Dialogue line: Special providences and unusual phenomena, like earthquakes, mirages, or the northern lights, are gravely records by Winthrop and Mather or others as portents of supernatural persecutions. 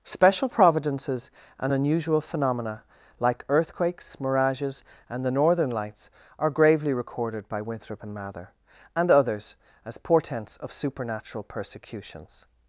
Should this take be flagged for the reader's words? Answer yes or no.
yes